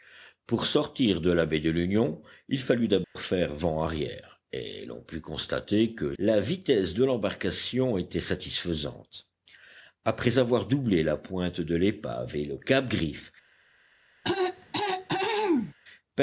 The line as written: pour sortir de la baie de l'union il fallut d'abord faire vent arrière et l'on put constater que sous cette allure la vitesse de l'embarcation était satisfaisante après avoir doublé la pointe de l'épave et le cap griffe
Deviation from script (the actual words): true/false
true